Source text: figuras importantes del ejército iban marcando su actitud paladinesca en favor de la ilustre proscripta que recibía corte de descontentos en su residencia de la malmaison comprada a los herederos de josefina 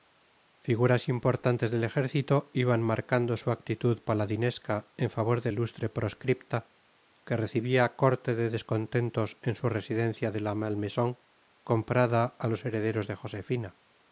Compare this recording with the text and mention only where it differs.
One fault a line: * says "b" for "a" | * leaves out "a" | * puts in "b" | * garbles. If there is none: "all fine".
* leaves out "la"